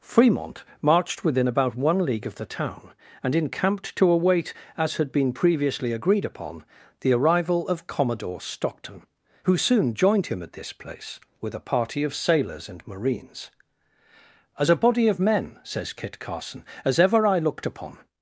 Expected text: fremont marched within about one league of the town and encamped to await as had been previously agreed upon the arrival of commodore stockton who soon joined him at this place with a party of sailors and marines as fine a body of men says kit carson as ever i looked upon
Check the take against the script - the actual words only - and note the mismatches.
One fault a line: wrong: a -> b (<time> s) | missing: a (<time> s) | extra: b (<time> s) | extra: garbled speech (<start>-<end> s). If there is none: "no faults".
missing: fine (14.7 s)